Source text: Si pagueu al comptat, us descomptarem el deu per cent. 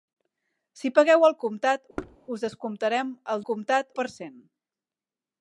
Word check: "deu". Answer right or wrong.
wrong